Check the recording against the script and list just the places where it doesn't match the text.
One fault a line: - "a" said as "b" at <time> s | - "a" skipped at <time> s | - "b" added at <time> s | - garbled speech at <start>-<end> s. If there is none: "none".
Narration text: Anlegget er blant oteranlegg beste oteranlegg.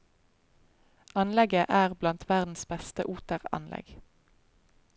- "oteranlegg" said as "verdens" at 2.3 s